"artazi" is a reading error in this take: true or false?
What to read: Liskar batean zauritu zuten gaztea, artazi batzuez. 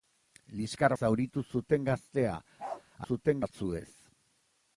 true